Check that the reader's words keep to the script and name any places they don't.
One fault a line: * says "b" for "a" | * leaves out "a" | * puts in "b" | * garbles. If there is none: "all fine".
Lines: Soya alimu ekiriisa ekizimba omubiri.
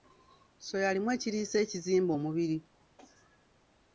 all fine